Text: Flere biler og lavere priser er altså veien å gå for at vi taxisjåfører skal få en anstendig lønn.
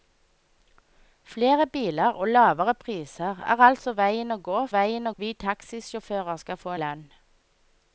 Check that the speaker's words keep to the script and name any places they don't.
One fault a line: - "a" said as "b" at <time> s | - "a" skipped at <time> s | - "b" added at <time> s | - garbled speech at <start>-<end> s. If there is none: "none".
- "for" said as "veien" at 4.7 s
- "en anstendig" skipped at 6.7 s